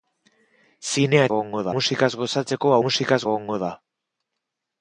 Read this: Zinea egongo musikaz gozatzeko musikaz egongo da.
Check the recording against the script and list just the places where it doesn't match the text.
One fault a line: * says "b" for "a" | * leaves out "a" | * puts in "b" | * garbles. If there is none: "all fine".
all fine